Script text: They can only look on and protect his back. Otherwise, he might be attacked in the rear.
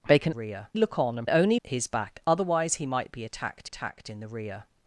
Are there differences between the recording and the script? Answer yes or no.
yes